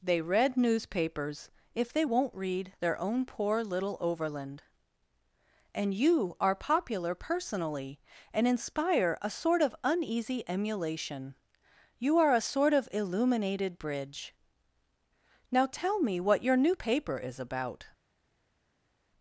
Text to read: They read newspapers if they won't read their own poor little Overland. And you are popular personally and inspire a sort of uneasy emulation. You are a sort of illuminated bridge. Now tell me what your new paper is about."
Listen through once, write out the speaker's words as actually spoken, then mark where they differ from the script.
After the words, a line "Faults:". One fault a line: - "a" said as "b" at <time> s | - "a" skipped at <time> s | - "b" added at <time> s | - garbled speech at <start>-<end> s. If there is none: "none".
They read newspapers if they won't read their own poor little Overland. And you are popular personally and inspire a sort of uneasy emulation. You are a sort of illuminated bridge. Now tell me what your new paper is about."
Faults:
none